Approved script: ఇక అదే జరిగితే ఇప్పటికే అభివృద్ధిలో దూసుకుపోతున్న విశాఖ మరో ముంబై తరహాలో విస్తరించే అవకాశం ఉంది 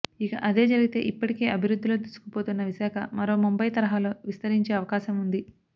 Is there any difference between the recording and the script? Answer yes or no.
no